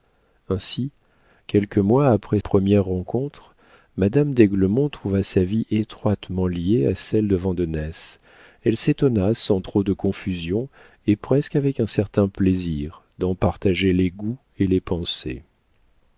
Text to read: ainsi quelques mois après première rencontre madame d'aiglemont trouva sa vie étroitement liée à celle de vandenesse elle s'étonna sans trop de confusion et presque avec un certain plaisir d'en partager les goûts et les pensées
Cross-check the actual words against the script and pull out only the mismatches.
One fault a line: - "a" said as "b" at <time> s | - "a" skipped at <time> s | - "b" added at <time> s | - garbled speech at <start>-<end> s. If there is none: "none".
none